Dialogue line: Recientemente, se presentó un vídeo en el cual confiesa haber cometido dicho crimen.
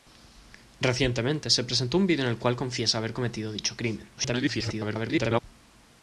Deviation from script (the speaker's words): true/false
true